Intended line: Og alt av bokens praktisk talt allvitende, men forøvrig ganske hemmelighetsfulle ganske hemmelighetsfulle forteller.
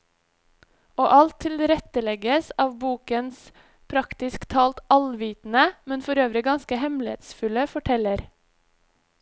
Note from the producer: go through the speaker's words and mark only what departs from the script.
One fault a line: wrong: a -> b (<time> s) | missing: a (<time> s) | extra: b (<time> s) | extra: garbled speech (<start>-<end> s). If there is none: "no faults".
extra: tilrettelegges (1.4 s)
missing: ganske hemmelighetsfulle (7.7 s)